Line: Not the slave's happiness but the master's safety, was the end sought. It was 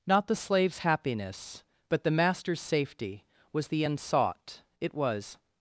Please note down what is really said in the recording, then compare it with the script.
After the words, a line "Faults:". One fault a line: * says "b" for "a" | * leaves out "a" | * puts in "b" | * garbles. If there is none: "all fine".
Not the slave's happiness but the master's safety, was the end sought. It was
Faults:
all fine